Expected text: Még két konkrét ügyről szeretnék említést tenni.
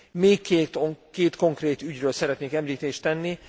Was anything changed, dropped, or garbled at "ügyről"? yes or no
no